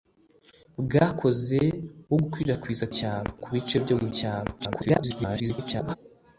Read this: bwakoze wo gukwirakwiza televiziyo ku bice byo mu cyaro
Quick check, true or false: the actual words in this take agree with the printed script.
false